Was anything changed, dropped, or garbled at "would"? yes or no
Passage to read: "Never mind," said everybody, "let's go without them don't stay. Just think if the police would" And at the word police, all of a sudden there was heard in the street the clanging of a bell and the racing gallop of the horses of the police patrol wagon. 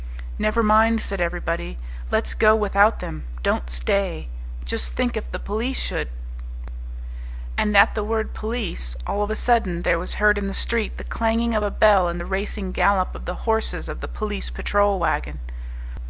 yes